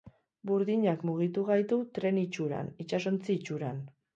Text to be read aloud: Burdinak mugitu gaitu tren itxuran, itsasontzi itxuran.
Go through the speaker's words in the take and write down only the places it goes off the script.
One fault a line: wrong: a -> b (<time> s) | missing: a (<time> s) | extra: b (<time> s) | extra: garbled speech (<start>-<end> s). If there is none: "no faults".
no faults